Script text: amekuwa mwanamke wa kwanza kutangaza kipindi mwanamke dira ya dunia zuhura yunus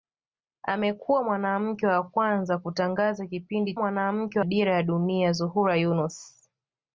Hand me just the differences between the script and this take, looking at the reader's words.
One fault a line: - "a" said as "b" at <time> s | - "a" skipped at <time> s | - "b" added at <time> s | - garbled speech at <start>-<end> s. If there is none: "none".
none